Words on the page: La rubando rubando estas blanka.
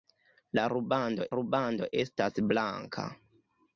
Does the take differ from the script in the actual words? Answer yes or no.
no